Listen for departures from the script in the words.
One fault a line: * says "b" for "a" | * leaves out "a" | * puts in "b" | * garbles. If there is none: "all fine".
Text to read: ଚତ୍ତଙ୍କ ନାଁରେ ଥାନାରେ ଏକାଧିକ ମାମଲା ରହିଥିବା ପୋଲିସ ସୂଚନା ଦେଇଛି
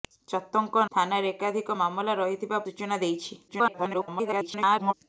* leaves out "ନାଁରେ"
* leaves out "ପୋଲିସ"
* garbles